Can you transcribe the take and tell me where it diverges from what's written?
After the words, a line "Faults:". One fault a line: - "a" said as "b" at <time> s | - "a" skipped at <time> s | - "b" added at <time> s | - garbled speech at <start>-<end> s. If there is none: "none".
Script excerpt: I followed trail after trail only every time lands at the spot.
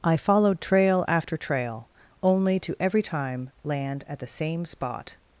I followed trail after trail only to every time land at the same spot.
Faults:
- "to" added at 2.6 s
- "lands" said as "land" at 3.6 s
- "same" added at 4.3 s